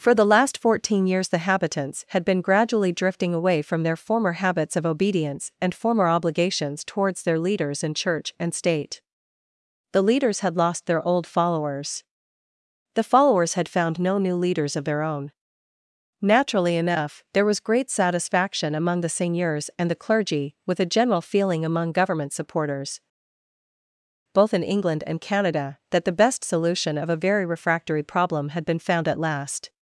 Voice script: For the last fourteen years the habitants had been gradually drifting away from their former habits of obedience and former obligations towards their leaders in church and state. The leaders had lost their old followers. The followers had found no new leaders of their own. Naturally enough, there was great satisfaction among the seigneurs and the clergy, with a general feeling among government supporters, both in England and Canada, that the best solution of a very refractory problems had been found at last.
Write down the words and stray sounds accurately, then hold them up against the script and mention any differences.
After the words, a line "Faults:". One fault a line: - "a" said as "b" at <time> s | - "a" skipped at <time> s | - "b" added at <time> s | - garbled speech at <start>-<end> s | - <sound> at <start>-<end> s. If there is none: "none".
For the last fourteen years the habitants had been gradually drifting away from their former habits of obedience and former obligations towards their leaders in church and state. The leaders had lost their old followers. The followers had found no new leaders of their own. Naturally enough, there was great satisfaction among the seigneurs and the clergy, with a general feeling among government supporters, both in England and Canada, that the best solution of a very refractory problem had been found at last.
Faults:
- "problems" said as "problem" at 28.0 s